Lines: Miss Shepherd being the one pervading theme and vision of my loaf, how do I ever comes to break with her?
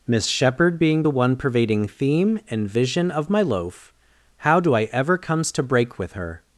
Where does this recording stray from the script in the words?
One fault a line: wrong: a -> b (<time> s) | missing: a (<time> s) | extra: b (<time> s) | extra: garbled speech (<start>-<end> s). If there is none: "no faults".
no faults